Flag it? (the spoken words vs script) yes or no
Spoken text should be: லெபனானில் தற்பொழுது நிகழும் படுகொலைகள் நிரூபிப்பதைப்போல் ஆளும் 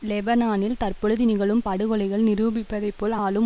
no